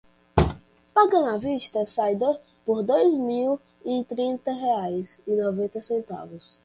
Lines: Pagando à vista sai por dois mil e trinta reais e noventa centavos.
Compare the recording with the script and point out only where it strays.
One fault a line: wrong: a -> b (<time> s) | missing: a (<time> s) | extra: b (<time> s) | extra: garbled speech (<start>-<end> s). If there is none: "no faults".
no faults